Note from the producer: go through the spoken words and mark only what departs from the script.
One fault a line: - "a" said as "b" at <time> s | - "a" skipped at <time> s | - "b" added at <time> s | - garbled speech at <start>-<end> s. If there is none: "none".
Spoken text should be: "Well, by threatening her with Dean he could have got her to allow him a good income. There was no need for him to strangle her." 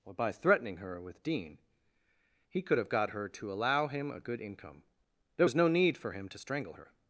- "Well" said as "Or" at 0.0 s